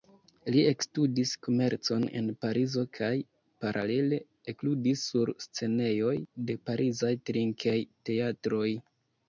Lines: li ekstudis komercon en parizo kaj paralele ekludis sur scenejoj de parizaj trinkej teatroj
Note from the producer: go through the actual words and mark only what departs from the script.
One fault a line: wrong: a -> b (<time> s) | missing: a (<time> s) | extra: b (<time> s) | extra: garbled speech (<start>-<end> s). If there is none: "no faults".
no faults